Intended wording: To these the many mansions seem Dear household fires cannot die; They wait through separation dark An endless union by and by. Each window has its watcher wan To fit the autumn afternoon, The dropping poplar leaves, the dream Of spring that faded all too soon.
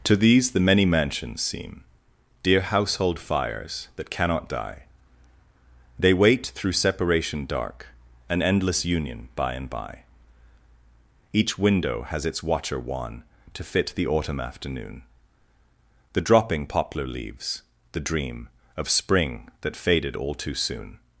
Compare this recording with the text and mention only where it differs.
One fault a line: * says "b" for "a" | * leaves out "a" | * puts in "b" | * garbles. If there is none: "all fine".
* puts in "that"